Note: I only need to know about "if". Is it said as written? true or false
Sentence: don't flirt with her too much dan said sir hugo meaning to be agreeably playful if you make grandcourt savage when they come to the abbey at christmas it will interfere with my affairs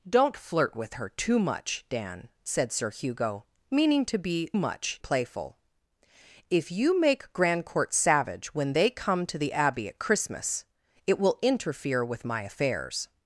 true